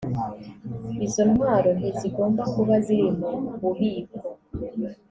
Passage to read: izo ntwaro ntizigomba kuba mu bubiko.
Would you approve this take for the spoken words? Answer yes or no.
no